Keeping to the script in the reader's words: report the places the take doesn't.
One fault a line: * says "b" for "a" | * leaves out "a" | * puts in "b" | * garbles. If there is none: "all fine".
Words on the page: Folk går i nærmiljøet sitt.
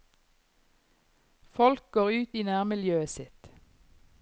* puts in "ut"